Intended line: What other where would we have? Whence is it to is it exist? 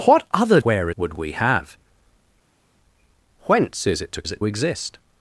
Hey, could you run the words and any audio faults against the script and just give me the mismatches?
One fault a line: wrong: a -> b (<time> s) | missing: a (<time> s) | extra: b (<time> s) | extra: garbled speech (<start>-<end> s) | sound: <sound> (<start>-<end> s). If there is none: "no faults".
no faults